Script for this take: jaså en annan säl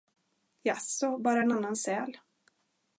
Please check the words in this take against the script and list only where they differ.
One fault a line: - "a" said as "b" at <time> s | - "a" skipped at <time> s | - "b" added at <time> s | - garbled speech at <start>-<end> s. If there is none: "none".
- "bara" added at 1.2 s